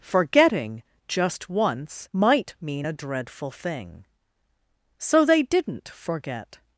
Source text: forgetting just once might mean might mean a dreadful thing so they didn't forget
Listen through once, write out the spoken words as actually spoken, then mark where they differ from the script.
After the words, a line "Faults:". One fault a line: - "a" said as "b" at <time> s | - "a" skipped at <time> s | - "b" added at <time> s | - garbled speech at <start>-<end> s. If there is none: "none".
forgetting just once might mean a dreadful thing so they didn't forget
Faults:
- "might mean" skipped at 2.9 s